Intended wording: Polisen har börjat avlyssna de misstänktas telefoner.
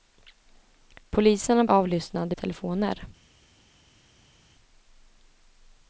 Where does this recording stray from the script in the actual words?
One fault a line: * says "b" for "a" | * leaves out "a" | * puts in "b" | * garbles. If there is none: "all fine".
* leaves out "börjat"
* leaves out "misstänktas"